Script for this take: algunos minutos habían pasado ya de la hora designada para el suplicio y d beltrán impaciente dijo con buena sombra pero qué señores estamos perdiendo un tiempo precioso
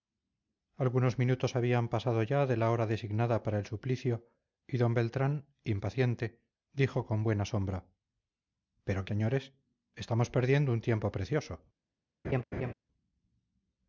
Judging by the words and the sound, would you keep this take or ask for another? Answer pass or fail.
fail